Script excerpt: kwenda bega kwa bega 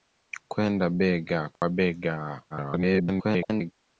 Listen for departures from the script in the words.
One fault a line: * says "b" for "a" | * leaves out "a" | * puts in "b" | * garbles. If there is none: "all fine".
* garbles